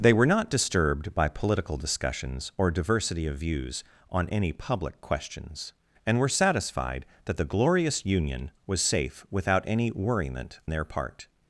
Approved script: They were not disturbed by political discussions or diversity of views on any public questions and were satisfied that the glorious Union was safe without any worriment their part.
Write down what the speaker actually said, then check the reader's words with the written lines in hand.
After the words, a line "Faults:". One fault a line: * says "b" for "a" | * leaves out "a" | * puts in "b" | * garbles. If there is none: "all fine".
They were not disturbed by political discussions or diversity of views on any public questions and were satisfied that the glorious Union was safe without any worriment their part.
Faults:
all fine